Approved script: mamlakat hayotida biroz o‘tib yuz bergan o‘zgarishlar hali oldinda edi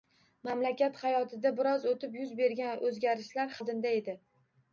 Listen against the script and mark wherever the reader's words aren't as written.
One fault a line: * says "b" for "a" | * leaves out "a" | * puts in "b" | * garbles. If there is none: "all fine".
* leaves out "hali"